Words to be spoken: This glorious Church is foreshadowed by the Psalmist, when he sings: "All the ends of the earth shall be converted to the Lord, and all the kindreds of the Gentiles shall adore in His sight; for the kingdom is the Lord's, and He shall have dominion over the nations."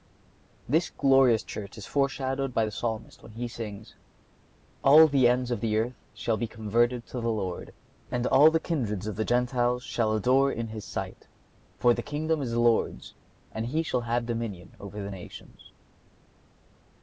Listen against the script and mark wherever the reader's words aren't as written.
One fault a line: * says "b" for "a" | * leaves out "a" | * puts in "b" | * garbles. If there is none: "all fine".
all fine